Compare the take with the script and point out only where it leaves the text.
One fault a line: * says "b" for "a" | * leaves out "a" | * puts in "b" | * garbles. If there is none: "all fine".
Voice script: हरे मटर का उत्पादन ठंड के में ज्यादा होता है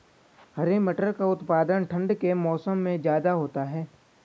* puts in "मौसम"